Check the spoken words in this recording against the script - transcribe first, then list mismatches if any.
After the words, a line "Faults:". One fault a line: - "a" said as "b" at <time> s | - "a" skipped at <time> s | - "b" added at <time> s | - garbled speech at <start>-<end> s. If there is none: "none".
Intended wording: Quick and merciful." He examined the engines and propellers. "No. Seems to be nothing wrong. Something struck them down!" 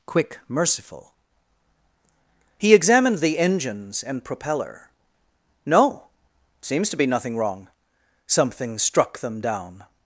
Quick merciful." He examined the engines and propeller. "No. Seems to be nothing wrong. Something struck them down!"
Faults:
- "and" skipped at 0.4 s
- "propellers" said as "propeller" at 4.2 s